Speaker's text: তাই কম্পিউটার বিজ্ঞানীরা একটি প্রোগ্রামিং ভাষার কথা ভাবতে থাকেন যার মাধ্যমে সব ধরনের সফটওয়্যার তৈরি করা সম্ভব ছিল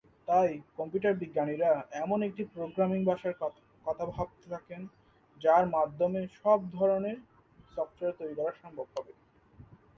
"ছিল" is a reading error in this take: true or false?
true